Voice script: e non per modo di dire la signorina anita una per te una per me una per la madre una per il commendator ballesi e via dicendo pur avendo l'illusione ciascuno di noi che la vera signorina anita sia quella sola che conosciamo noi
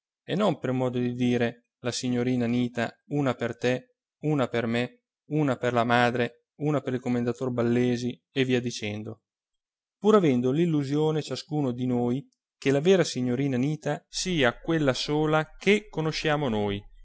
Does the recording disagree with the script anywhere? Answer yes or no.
no